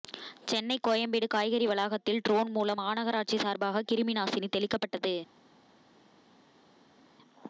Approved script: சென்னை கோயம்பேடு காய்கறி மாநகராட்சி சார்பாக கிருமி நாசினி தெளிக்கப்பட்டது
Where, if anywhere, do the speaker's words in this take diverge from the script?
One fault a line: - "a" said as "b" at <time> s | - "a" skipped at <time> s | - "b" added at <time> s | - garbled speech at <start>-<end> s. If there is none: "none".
- "வளாகத்தில் ட்ரோன் மூலம்" added at 1.7 s